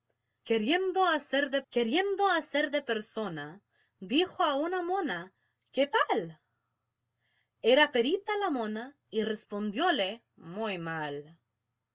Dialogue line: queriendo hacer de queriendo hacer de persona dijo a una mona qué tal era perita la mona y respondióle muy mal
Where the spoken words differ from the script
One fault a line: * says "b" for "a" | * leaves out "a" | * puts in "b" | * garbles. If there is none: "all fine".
all fine